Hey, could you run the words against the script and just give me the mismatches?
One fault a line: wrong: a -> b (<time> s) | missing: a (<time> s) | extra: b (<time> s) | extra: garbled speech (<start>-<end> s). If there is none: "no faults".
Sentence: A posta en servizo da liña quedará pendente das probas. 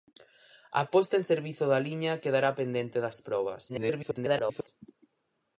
extra: garbled speech (3.7-4.7 s)